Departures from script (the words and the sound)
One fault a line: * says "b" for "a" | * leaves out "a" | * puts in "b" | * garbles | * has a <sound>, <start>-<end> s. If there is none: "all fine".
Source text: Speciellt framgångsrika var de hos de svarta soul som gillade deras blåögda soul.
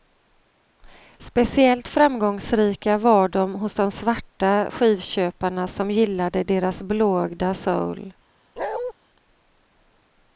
* says "skivköparna" for "soul"
* has a bark, 8.6-8.9 s